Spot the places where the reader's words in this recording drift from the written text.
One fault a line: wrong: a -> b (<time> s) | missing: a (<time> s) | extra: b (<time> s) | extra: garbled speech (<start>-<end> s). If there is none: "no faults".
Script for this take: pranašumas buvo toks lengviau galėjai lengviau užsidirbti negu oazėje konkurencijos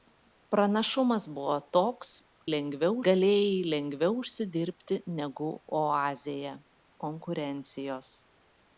no faults